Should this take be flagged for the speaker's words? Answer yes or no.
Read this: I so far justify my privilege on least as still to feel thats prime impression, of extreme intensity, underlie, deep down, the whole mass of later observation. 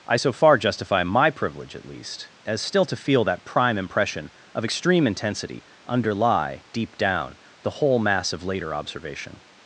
yes